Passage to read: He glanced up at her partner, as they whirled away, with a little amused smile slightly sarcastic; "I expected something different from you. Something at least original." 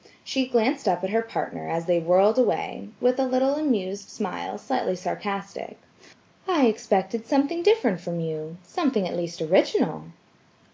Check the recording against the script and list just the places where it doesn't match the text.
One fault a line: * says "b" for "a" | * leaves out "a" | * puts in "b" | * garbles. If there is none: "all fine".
* says "She" for "He"